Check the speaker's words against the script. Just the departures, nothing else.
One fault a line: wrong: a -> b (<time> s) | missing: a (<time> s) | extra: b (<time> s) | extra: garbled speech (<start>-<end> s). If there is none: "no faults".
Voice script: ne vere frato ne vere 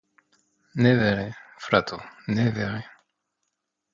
no faults